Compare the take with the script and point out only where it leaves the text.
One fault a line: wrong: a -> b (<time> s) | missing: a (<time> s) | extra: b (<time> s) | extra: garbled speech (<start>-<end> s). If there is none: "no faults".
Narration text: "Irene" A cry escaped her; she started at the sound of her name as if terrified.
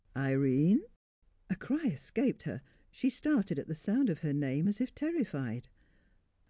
no faults